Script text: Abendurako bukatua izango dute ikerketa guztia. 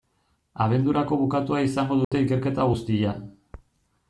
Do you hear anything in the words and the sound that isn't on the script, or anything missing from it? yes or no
yes